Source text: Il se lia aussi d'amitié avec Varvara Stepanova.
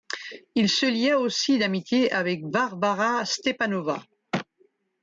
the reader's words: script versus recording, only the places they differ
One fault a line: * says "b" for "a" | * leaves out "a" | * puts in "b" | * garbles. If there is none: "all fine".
all fine